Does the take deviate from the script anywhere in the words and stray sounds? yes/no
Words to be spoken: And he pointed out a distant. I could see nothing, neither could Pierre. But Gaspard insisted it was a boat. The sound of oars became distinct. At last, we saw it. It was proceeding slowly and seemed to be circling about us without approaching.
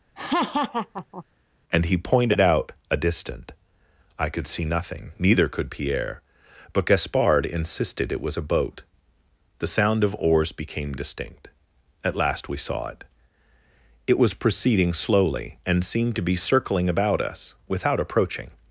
yes